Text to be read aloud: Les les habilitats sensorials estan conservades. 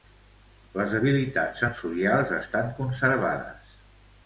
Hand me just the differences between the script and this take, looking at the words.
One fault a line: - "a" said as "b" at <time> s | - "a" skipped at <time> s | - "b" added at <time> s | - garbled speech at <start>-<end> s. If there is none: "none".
- "les" skipped at 0.9 s